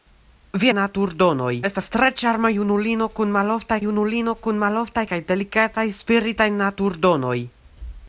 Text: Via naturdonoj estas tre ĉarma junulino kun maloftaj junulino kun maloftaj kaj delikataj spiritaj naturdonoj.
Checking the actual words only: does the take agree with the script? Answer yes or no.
yes